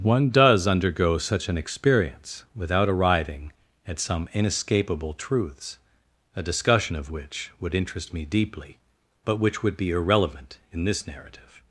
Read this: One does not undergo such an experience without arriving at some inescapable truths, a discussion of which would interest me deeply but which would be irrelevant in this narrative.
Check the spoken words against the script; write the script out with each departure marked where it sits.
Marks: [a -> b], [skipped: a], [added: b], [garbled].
One does [skipped: not] undergo such an experience without arriving at some inescapable truths, a discussion of which would interest me deeply but which would be irrelevant in this narrative.